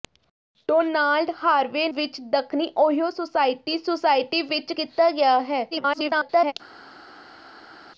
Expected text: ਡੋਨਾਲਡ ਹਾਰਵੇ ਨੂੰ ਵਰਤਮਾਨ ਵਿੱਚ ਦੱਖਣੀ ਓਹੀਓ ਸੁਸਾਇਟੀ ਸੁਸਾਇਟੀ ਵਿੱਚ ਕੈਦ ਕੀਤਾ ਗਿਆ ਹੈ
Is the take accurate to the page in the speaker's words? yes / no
no